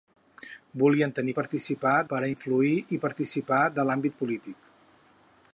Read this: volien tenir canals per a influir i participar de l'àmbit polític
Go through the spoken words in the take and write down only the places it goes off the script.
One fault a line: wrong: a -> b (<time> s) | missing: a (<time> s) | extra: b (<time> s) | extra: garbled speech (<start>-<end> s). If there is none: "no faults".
wrong: canals -> participar (1.4 s)